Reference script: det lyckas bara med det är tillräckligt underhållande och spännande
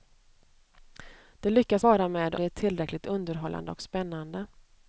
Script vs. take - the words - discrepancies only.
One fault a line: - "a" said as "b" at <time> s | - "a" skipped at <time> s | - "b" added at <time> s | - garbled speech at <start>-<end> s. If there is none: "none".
none